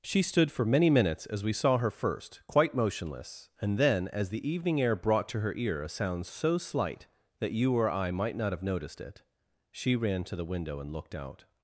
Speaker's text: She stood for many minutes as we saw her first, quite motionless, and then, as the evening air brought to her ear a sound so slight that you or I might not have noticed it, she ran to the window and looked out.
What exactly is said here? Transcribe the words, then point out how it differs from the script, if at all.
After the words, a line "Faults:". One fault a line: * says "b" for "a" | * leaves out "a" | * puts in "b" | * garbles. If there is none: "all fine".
She stood for many minutes as we saw her first, quite motionless, and then, as the evening air brought to her ear a sound so slight that you or I might not have noticed it, she ran to the window and looked out.
Faults:
all fine